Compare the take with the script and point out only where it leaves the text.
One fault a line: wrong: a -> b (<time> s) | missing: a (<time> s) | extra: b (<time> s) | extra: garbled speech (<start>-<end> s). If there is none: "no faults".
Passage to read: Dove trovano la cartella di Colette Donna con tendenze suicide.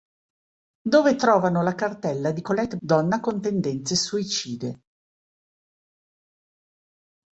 no faults